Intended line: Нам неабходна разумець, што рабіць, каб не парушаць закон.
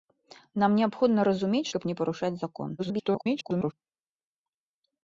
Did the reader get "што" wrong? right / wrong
wrong